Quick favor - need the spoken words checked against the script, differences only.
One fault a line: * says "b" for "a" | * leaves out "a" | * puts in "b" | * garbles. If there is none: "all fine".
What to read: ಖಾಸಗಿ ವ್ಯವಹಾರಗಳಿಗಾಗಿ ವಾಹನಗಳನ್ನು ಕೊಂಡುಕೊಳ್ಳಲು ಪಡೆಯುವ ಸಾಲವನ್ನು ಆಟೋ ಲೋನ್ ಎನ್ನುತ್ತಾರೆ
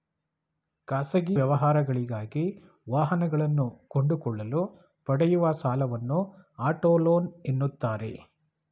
all fine